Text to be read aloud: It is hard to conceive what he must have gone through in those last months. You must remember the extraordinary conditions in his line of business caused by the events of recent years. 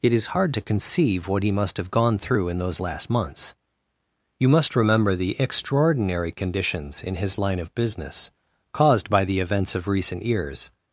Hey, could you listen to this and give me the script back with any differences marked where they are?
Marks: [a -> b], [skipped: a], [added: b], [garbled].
It is hard to conceive what he must have gone through in those last months. You must remember the extraordinary conditions in his line of business caused by the events of recent years.